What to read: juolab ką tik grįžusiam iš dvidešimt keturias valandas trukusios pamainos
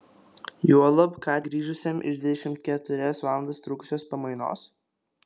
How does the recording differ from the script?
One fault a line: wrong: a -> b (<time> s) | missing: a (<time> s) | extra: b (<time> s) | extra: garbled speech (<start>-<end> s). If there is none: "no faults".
missing: tik (1.3 s)